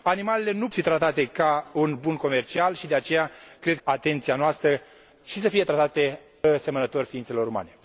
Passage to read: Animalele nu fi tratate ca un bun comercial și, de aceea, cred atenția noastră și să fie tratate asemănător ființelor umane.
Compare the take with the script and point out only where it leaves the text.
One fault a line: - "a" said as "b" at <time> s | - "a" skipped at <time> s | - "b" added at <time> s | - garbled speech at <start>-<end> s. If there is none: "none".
none